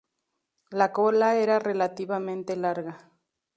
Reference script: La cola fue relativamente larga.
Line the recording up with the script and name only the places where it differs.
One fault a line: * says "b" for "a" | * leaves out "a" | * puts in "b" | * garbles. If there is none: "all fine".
* says "era" for "fue"